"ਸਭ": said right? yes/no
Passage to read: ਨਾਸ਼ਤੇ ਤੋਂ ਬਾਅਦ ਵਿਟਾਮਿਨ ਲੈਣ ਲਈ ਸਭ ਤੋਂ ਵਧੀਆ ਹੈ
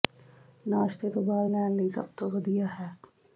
yes